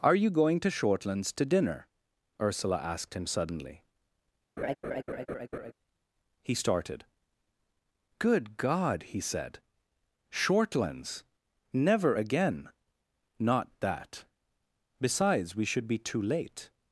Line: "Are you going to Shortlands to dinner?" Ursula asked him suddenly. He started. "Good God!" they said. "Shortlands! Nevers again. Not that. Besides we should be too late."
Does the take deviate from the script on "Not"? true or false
false